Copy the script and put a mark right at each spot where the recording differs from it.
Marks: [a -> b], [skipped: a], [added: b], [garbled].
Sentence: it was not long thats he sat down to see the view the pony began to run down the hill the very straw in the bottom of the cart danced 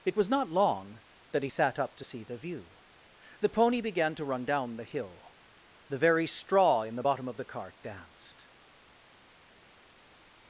it was not long [thats -> that] he sat [down -> up] to see the view the pony began to run down the hill the very straw in the bottom of the cart danced